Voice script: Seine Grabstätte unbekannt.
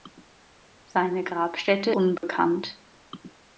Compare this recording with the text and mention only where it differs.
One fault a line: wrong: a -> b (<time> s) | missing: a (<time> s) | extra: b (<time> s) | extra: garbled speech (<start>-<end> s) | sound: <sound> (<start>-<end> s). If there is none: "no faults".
sound: dropout (2.2-2.2 s)